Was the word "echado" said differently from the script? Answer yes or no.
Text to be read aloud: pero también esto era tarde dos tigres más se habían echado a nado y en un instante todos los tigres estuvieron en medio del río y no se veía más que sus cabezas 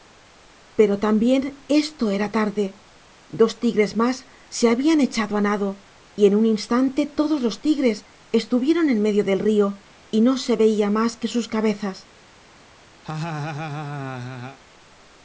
no